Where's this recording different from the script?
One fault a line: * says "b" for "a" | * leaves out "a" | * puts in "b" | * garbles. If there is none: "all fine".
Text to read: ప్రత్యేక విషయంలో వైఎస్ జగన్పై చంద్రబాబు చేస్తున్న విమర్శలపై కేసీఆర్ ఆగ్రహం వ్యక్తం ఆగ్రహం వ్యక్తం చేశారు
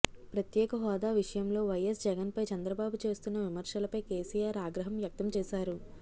* puts in "హోదా"
* leaves out "ఆగ్రహం వ్యక్తం"